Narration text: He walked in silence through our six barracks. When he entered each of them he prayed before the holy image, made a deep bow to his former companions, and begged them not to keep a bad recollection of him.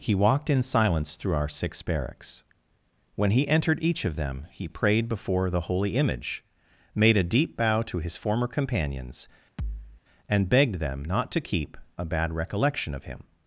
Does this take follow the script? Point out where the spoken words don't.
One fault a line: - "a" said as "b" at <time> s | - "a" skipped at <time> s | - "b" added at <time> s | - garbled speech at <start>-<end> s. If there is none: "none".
none